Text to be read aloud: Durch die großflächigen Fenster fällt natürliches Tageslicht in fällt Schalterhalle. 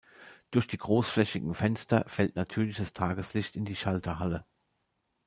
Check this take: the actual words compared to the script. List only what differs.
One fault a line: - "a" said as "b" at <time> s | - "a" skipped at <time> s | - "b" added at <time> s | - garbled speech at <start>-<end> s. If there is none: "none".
- "fällt" said as "die" at 3.6 s